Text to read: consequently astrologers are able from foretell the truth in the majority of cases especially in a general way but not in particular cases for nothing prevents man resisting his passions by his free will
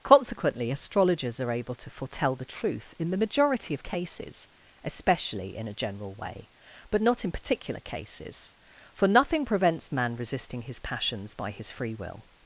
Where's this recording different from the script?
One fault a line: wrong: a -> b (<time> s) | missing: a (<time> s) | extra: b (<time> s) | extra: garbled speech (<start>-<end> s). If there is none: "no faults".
wrong: from -> to (1.8 s)